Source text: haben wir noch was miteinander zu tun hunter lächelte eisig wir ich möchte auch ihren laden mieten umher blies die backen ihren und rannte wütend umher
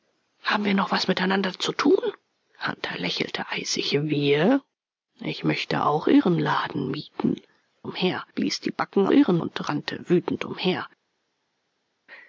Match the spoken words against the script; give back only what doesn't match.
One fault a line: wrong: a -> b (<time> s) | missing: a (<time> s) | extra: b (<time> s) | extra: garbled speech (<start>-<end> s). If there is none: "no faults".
no faults